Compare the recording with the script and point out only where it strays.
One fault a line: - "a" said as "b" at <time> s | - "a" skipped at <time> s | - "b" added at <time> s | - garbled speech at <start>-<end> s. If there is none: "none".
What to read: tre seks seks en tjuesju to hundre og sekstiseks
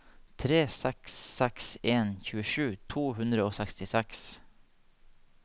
none